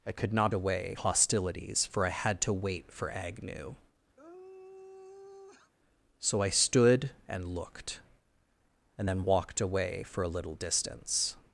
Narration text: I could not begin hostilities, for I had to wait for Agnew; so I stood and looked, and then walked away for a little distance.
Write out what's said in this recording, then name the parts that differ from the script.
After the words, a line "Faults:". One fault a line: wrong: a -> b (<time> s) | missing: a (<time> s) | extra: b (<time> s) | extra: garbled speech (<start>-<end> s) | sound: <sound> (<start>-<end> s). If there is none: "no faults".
I could not away hostilities, for I had to wait for Agnew; so I stood and looked, and then walked away for a little distance.
Faults:
wrong: begin -> away (0.5 s)
sound: sigh (4.2-5.7 s)